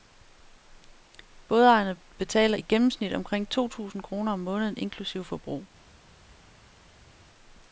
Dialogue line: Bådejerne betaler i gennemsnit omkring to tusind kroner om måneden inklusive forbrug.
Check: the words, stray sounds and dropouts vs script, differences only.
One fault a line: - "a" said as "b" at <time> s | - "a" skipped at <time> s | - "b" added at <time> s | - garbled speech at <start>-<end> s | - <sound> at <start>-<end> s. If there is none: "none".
none